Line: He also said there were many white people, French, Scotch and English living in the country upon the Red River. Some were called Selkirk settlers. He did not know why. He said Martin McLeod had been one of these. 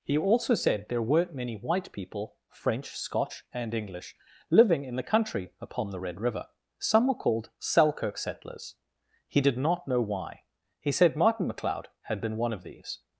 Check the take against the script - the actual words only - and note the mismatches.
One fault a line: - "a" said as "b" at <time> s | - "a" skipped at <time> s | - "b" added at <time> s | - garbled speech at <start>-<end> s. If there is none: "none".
- "were" said as "weren't" at 1.0 s